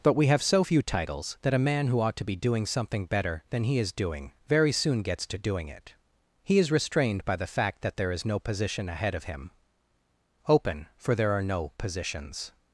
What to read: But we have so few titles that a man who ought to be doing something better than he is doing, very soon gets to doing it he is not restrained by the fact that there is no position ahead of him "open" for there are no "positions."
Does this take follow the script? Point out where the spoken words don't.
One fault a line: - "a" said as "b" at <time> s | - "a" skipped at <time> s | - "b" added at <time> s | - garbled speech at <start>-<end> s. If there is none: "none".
- "not" skipped at 6.7 s